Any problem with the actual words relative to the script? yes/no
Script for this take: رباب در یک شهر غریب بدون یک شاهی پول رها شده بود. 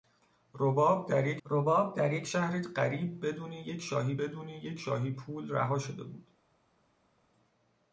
yes